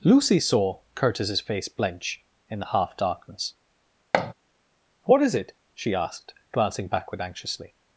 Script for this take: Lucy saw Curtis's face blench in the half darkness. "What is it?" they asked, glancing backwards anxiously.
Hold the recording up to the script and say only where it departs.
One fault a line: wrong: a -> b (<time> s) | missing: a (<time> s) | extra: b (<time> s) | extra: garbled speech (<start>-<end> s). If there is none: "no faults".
wrong: they -> she (5.7 s)
wrong: backwards -> backward (6.9 s)